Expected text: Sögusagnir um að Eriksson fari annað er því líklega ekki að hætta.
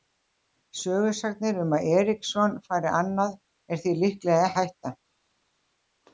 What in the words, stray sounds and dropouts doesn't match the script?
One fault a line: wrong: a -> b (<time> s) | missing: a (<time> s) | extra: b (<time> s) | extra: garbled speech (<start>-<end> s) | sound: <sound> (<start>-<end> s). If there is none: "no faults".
missing: ekki (4.5 s)